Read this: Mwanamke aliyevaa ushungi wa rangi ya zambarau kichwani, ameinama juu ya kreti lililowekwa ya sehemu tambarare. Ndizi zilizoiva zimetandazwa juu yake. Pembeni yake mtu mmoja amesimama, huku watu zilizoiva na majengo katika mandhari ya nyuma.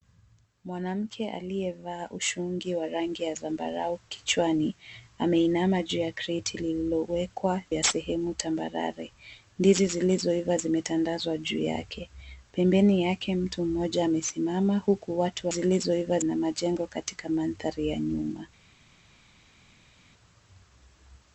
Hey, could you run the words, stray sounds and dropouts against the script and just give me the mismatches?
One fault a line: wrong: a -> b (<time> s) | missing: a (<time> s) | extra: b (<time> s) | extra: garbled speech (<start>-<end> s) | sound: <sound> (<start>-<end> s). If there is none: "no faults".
no faults